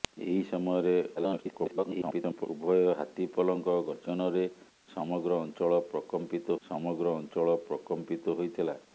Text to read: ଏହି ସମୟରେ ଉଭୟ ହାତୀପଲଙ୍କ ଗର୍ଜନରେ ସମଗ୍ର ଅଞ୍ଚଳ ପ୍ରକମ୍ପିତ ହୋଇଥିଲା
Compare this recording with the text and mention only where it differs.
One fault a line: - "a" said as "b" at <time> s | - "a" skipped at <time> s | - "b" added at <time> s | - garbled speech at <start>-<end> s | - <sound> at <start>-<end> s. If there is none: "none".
- garbled speech at 1.2-2.5 s
- "ସମଗ୍ର ଅଞ୍ଚଳ ପ୍ରକମ୍ପିତ" added at 6.6 s